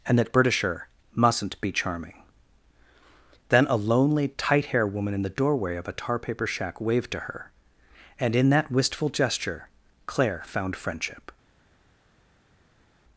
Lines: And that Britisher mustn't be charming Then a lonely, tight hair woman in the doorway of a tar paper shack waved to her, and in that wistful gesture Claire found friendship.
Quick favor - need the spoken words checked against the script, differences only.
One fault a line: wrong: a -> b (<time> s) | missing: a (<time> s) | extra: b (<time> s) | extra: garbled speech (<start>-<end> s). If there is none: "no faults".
no faults